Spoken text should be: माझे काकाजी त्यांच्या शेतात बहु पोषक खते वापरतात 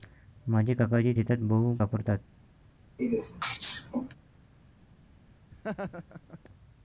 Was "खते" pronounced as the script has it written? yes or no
no